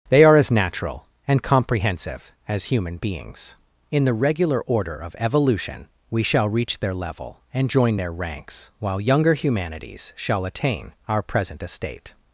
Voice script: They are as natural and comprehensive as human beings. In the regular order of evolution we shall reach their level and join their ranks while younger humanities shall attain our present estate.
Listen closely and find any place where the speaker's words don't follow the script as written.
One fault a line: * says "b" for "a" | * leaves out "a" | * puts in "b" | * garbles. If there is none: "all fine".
all fine